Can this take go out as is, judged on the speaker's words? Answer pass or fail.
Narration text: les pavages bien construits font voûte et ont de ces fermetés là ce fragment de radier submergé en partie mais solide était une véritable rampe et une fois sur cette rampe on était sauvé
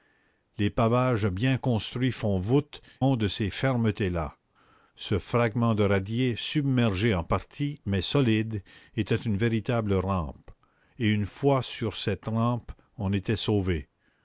fail